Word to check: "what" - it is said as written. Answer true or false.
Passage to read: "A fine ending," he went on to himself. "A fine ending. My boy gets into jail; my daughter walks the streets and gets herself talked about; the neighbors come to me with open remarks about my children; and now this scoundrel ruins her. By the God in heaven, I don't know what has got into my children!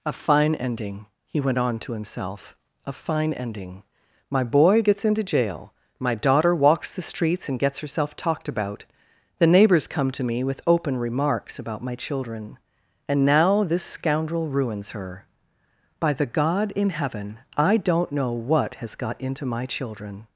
true